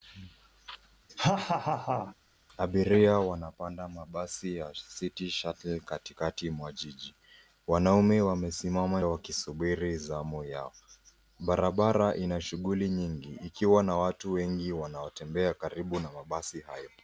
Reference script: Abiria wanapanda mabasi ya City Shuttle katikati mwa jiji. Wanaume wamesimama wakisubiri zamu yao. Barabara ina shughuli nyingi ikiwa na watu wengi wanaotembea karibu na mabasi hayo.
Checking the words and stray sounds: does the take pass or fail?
fail